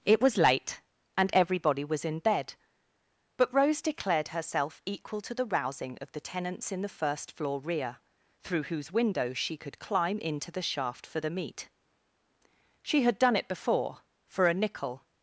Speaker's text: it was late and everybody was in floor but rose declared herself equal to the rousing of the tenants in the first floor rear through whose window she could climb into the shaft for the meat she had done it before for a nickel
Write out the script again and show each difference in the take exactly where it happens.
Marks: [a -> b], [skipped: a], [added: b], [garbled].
it was late and everybody was in [floor -> bed] but rose declared herself equal to the rousing of the tenants in the first floor rear through whose window she could climb into the shaft for the meat she had done it before for a nickel